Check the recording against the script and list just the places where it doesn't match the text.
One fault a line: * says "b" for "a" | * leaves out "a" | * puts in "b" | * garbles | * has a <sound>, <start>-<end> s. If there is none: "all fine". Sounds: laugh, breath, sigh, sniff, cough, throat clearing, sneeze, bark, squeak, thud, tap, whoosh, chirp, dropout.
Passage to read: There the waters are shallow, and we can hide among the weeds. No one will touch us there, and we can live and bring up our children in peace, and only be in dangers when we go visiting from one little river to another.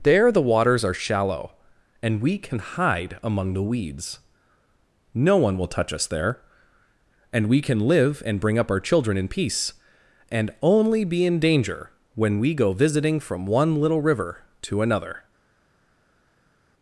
* says "danger" for "dangers"